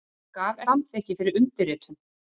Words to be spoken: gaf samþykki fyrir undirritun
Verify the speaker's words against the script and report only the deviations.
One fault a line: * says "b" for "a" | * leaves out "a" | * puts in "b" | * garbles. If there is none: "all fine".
all fine